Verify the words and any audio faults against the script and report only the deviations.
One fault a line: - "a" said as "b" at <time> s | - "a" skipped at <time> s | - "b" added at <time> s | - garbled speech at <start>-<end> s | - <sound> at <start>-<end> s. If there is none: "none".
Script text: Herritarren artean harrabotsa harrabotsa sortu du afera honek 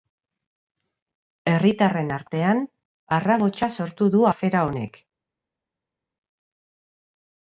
- "harrabotsa" skipped at 3.7 s